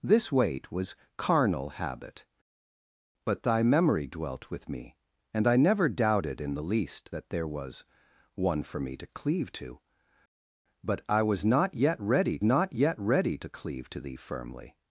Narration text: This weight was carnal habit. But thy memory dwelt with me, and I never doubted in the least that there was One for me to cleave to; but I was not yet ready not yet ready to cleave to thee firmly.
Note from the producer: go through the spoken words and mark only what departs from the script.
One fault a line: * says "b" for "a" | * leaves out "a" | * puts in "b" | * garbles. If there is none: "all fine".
all fine